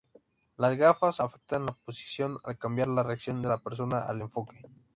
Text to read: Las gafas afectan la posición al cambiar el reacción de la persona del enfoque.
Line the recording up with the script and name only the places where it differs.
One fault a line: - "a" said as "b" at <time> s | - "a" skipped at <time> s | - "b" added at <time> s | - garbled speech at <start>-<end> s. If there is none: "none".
- "el" said as "la" at 2.9 s
- "del" said as "al" at 4.0 s